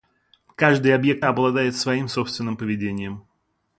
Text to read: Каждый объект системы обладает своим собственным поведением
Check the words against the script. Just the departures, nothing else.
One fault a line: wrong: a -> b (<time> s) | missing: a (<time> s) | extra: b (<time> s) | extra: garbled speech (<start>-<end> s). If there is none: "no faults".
missing: системы (1.2 s)